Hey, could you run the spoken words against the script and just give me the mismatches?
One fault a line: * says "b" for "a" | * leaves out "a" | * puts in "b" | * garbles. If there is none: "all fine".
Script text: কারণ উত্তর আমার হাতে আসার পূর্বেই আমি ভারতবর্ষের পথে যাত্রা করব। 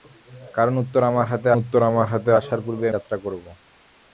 * says "উত্তর আমার হাতে আসার পূর্বেই" for "আসার পূর্বেই আমি ভারতবর্ষের পথে"